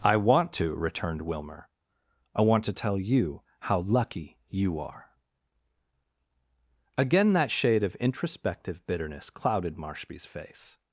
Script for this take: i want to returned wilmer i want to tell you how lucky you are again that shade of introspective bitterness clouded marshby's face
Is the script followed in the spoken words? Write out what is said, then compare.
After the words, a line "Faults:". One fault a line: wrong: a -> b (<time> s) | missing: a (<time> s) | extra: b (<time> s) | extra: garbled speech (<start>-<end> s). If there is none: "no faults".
i want to returned wilmer i want to tell you how lucky you are again that shade of introspective bitterness clouded marshby's face
Faults:
no faults